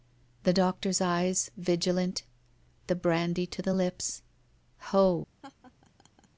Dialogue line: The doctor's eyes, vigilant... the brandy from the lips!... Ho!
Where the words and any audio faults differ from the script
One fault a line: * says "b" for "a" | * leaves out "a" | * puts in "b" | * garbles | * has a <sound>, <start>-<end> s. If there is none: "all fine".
* says "to" for "from"
* has a laugh, 5.4-6.3 s